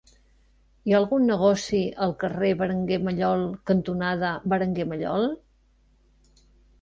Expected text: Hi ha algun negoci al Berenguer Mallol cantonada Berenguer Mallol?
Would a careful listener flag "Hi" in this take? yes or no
no